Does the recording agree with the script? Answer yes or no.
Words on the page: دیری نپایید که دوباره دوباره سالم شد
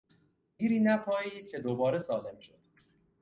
no